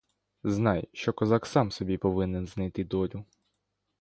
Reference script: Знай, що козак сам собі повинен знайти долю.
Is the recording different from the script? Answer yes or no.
no